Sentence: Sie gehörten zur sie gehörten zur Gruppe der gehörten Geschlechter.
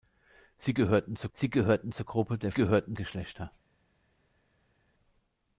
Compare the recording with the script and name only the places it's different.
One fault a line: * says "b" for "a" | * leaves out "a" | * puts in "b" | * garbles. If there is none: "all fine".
all fine